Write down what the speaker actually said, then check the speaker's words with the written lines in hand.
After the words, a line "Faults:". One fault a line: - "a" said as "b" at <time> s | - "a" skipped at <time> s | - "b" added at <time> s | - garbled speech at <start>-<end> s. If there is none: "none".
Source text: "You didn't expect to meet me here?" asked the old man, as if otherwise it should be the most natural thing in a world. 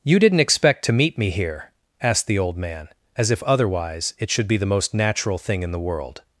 "You didn't expect to meet me here?" asked the old man, as if otherwise it should be the most natural thing in the world.
Faults:
- "a" said as "the" at 5.7 s